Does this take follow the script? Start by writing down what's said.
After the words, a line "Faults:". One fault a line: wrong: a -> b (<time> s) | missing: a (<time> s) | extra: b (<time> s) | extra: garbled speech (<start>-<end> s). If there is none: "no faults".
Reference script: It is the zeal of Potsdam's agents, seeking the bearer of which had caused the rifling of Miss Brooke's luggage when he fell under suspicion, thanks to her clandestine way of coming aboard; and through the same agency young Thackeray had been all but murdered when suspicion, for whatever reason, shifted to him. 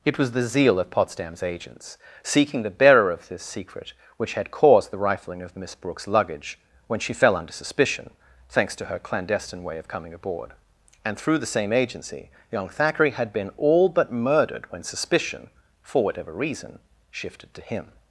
It was the zeal of Potsdam's agents, seeking the bearer of this secret, which had caused the rifling of Miss Brooke's luggage when she fell under suspicion, thanks to her clandestine way of coming aboard; and through the same agency young Thackeray had been all but murdered when suspicion, for whatever reason, shifted to him.
Faults:
wrong: is -> was (0.2 s)
extra: this secret (3.3 s)
wrong: he -> she (7.0 s)